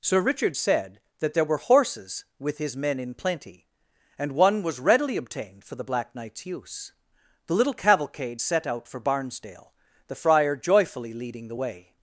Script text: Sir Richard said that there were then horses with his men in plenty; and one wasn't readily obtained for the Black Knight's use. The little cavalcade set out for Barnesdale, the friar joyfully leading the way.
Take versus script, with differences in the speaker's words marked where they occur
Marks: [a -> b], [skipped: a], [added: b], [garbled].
Sir Richard said that there were [skipped: then] horses with his men in plenty; and one [wasn't -> was] readily obtained for the Black Knight's use. The little cavalcade set out for Barnesdale, the friar joyfully leading the way.